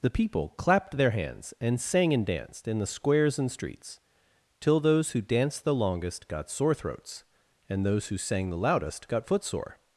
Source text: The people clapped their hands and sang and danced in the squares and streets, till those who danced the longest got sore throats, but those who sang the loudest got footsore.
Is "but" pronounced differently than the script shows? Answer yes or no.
yes